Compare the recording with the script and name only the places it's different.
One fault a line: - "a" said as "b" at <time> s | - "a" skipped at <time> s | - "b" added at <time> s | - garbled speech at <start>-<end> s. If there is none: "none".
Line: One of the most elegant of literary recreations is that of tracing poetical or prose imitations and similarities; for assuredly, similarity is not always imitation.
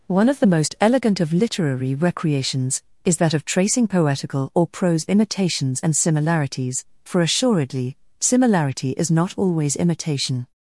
none